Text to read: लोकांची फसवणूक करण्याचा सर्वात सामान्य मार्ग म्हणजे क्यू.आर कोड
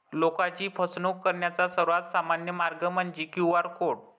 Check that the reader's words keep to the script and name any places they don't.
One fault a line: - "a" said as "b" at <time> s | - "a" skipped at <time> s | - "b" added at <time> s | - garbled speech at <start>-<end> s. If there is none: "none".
none